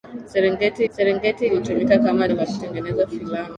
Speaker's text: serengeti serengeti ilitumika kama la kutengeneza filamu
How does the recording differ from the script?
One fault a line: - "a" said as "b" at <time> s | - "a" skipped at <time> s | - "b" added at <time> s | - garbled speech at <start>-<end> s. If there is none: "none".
none